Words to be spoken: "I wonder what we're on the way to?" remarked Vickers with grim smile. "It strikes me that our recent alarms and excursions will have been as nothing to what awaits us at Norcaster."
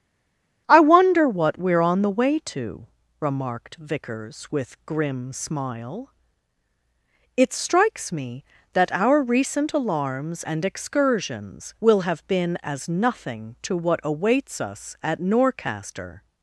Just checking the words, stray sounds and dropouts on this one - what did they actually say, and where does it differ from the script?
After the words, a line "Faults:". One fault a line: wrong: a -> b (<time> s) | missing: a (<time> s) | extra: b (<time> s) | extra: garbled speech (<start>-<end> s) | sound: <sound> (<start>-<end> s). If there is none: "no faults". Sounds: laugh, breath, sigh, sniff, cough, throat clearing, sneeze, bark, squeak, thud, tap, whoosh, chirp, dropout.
"I wonder what we're on the way to?" remarked Vickers with grim smile. "It strikes me that our recent alarms and excursions will have been as nothing to what awaits us at Norcaster."
Faults:
no faults